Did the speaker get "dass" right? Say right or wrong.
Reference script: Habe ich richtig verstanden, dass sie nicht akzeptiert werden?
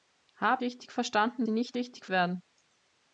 wrong